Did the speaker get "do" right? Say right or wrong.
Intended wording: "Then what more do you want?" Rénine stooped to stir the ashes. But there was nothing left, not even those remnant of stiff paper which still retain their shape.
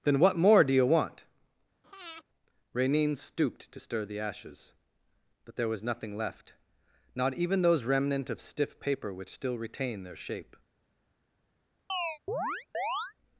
right